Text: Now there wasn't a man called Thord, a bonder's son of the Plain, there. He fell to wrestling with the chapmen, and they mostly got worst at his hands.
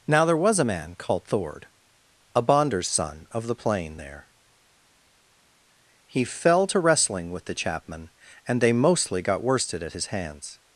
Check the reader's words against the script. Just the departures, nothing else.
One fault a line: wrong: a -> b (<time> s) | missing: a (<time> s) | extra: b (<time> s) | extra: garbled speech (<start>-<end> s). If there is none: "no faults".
wrong: wasn't -> was (0.4 s)
wrong: worst -> worsted (9.4 s)